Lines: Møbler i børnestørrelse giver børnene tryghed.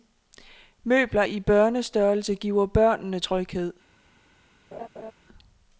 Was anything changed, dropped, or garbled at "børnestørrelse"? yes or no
no